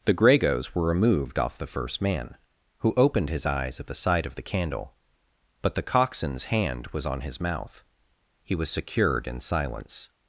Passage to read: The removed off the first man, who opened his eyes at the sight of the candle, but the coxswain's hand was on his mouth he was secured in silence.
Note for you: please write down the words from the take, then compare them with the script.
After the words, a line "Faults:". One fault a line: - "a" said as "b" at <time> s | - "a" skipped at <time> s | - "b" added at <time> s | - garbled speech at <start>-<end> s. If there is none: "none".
The gregos were removed off the first man, who opened his eyes at the sight of the candle, but the coxswain's hand was on his mouth he was secured in silence.
Faults:
- "gregos were" added at 0.1 s